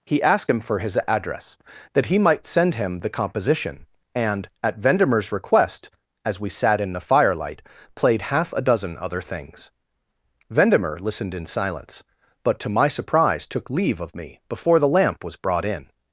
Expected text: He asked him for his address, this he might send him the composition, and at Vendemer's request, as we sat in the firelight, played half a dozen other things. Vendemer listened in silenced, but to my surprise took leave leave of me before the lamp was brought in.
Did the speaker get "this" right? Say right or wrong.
wrong